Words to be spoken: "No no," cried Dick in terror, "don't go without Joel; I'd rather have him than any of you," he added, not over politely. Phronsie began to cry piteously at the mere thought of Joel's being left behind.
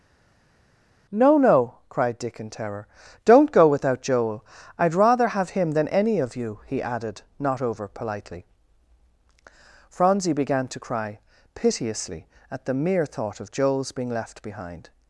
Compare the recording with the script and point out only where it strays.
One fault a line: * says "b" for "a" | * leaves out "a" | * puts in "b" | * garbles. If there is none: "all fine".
all fine